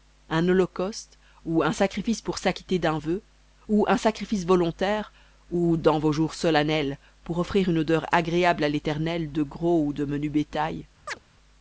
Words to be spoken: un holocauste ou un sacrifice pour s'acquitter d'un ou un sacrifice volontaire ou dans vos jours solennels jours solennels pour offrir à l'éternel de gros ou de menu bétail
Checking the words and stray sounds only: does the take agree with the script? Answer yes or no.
no